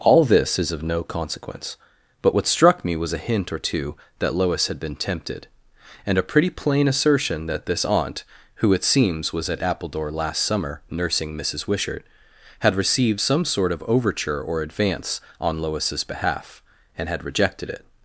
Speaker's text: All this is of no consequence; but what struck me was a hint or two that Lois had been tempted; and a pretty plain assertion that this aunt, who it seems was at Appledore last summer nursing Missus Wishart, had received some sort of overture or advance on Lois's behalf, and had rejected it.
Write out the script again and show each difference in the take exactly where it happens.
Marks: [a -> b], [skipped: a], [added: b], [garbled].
All this is of no consequence; but what struck me was a hint or two that Lois had been tempted; and a pretty plain assertion that this aunt, who it seems was at Appledore last summer nursing Missus Wishart, had received some sort of overture or advance on Lois's behalf, and had rejected it.